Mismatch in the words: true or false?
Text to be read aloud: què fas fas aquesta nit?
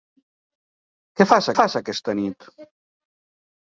false